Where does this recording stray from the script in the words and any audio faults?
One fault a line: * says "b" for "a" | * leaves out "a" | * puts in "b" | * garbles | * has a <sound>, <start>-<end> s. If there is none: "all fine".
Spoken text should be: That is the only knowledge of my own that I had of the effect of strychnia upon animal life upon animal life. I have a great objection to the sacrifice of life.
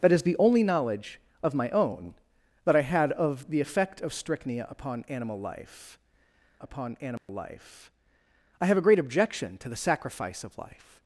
* has a dropout, 7.2-7.3 s